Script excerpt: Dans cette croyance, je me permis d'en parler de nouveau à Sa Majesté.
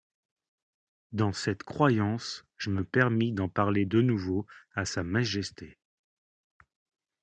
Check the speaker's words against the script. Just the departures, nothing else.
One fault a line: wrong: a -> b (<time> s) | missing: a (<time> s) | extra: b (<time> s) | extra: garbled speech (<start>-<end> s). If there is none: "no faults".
no faults